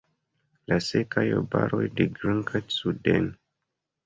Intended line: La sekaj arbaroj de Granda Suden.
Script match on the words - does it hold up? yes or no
yes